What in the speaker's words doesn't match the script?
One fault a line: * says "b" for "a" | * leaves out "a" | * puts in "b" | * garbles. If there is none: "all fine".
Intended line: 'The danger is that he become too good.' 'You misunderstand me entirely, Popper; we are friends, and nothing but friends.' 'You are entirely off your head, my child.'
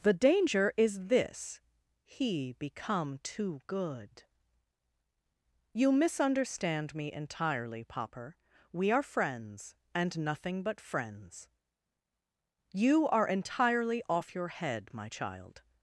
* says "this" for "that"